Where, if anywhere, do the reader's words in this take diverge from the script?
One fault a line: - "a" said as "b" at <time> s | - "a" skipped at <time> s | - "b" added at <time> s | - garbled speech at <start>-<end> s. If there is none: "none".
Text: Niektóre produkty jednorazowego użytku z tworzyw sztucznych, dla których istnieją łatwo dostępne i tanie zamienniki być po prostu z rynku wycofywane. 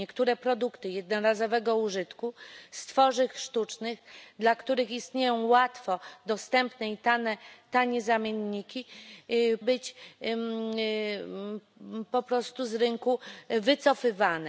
none